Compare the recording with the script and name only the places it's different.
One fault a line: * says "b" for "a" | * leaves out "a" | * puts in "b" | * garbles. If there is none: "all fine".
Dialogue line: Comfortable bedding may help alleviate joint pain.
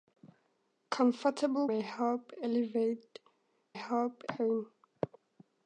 * leaves out "bedding"
* says "help" for "joint"